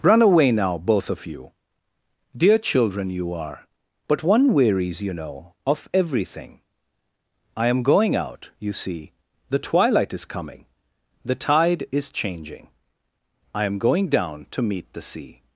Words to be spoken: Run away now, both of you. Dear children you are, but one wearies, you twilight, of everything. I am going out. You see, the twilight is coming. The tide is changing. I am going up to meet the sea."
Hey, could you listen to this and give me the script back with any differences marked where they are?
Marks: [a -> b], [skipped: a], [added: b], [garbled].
Run away now, both of you. Dear children you are, but one wearies, you [twilight, -> know] of everything. I am going out. You see, the twilight is coming. The tide is changing. I am going [up -> down] to meet the sea."